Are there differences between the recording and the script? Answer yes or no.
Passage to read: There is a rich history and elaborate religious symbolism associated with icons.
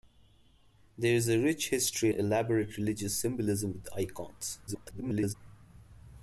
yes